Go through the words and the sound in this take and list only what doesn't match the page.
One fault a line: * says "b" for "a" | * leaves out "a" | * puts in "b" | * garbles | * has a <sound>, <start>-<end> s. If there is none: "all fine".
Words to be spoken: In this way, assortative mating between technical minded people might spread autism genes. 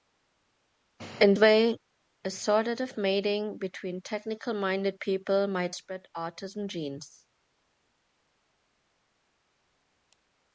* leaves out "this"